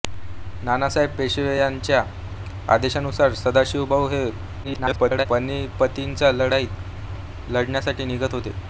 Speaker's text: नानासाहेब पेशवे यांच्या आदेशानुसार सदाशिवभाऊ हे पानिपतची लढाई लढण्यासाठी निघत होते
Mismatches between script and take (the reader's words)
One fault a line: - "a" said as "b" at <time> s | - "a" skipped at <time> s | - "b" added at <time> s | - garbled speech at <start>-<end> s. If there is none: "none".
- garbled speech at 4.6-5.3 s